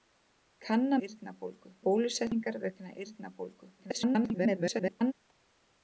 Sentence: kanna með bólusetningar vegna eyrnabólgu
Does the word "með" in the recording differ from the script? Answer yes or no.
yes